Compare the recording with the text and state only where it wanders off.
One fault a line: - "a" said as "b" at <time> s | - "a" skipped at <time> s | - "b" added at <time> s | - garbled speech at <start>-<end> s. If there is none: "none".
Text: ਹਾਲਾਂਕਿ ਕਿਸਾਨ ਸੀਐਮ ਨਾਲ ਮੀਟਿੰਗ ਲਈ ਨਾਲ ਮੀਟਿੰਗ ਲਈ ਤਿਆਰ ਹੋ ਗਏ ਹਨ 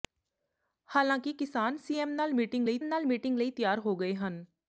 none